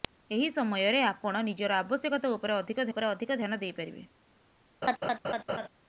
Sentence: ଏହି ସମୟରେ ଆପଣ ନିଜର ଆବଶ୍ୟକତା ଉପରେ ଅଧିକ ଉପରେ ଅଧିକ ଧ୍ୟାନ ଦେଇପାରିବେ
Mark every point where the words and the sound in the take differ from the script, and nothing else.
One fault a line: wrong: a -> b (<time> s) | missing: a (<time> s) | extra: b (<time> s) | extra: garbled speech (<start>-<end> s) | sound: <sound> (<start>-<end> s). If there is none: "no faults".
sound: laugh (4.8-5.7 s)